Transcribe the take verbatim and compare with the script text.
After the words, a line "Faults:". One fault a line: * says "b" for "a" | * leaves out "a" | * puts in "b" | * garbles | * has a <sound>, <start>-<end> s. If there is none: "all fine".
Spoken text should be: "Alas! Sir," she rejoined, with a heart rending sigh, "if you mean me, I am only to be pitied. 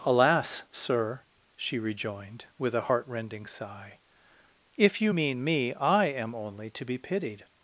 "Alas! Sir," she rejoined, with a heart rending sigh, "if you mean me, I am only to be pitied.
Faults:
all fine